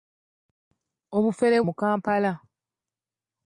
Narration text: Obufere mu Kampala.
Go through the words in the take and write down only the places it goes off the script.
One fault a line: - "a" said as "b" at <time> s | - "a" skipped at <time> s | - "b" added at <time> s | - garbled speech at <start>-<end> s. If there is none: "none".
none